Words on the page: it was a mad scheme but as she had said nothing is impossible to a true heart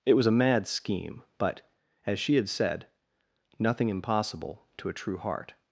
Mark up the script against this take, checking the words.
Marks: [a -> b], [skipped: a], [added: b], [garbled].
it was a mad scheme but as she had said nothing [skipped: is] impossible to a true heart